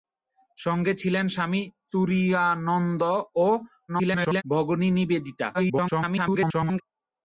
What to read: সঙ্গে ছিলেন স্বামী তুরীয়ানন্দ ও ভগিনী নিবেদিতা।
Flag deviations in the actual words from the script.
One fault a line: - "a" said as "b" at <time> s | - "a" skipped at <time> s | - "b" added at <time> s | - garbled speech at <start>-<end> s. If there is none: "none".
- garbled speech at 3.9-4.4 s
- garbled speech at 5.5-6.8 s